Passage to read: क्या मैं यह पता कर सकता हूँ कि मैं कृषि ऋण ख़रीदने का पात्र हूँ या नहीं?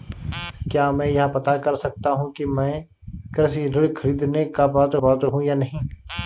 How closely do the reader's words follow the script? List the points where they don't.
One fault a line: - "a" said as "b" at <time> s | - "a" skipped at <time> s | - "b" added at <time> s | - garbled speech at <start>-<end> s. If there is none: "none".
- "पात्र" added at 5.0 s